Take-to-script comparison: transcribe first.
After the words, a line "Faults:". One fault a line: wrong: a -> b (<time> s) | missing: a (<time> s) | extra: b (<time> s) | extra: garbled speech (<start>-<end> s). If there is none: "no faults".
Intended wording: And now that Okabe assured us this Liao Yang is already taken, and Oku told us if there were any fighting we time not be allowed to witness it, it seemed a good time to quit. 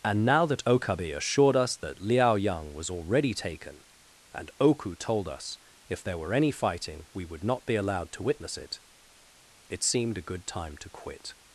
And now that Okabe assured us that Liao Yang was already taken, and Oku told us if there were any fighting we would not be allowed to witness it, it seemed a good time to quit.
Faults:
wrong: this -> that (1.8 s)
wrong: is -> was (2.7 s)
wrong: time -> would (7.2 s)